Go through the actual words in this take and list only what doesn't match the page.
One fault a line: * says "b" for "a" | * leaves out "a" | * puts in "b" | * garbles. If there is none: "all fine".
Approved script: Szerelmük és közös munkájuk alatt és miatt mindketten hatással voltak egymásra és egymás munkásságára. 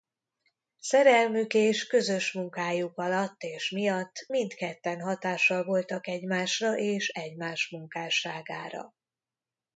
all fine